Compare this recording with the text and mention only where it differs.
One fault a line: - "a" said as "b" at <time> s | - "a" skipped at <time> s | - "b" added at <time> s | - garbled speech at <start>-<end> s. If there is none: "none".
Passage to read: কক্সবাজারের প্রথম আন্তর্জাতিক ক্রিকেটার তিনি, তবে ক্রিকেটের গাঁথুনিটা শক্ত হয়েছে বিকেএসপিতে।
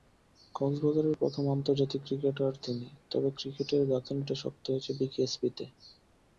none